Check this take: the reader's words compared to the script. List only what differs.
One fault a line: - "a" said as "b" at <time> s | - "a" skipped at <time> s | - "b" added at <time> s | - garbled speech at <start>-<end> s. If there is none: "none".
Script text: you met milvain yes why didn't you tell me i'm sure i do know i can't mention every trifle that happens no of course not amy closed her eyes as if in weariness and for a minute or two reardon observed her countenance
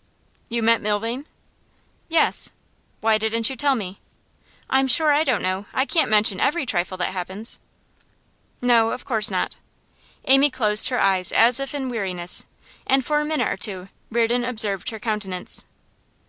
- "do" said as "don't" at 5.2 s